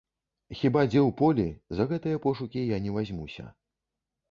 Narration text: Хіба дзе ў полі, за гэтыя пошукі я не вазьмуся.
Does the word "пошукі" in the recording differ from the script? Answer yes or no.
no